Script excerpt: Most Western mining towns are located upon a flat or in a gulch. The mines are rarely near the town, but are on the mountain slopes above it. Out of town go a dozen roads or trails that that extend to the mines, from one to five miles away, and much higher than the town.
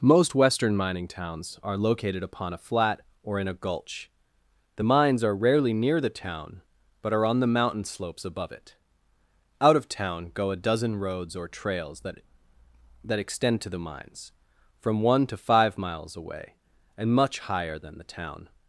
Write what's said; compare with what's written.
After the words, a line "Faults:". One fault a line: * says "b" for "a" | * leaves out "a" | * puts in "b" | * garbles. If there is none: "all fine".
Most Western mining towns are located upon a flat or in a gulch. The mines are rarely near the town, but are on the mountain slopes above it. Out of town go a dozen roads or trails that that extend to the mines, from one to five miles away, and much higher than the town.
Faults:
all fine